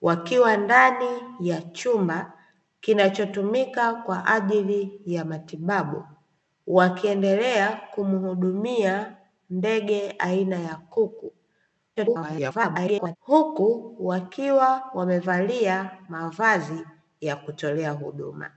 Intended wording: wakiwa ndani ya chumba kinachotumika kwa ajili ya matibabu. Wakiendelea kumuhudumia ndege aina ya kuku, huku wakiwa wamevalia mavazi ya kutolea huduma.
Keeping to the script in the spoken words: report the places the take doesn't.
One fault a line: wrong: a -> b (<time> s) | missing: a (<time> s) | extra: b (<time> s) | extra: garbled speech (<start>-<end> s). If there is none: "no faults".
extra: garbled speech (12.0-13.2 s)